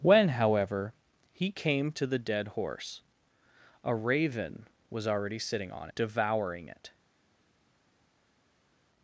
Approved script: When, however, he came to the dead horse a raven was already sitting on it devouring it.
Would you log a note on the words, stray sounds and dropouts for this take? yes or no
yes